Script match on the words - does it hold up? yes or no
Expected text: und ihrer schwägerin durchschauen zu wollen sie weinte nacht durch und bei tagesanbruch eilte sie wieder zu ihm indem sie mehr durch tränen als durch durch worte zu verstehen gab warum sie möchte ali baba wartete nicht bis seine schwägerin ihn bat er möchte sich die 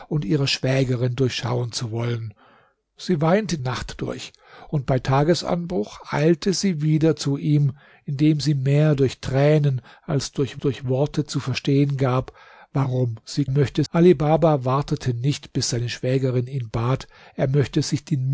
yes